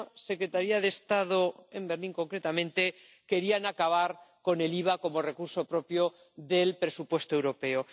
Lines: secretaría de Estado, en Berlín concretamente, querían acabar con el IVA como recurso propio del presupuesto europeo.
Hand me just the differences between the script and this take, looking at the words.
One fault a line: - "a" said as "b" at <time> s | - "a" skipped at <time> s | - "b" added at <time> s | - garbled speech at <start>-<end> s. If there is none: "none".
none